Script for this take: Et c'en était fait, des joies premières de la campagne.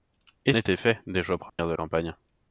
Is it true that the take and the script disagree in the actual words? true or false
true